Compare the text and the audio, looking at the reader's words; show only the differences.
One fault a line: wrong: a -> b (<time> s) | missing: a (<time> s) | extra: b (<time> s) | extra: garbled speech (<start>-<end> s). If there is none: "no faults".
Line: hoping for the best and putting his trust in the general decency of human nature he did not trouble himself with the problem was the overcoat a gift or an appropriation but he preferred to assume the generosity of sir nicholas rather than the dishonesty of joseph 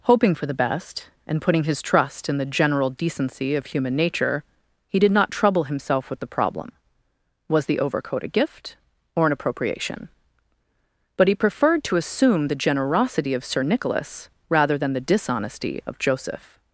no faults